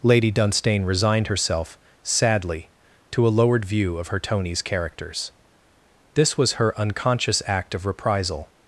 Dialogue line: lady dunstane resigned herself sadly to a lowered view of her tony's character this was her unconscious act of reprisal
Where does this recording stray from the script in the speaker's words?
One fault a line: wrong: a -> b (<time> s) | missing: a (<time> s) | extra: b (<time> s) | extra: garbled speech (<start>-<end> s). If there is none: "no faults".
wrong: character -> characters (4.6 s)